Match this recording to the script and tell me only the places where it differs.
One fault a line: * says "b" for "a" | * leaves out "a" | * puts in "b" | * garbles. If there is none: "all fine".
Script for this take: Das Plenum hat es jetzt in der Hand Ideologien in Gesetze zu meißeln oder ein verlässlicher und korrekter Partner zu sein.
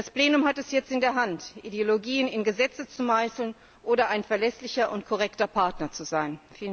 all fine